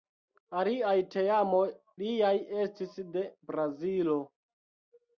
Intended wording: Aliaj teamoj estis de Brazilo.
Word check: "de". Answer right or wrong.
right